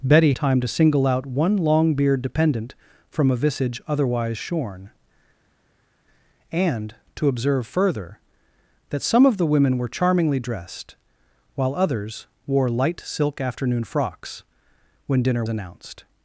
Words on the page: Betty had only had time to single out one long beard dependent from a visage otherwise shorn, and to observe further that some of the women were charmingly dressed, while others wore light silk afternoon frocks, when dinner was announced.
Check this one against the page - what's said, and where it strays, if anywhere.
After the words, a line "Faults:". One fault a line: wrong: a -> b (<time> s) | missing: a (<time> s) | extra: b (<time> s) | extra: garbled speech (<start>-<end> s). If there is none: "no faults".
Betty time to single out one long beard dependent from a visage otherwise shorn, and to observe further that some of the women were charmingly dressed, while others wore light silk afternoon frocks, when dinner announced.
Faults:
missing: had only had (0.3 s)
missing: was (15.5 s)